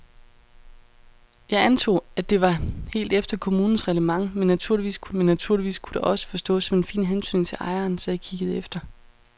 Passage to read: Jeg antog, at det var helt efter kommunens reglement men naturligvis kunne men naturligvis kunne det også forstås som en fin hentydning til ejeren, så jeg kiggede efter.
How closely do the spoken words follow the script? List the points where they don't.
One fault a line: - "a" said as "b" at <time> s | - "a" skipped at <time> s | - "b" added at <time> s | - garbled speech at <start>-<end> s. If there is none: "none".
none